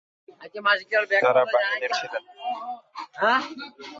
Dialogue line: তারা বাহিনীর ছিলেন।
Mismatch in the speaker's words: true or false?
false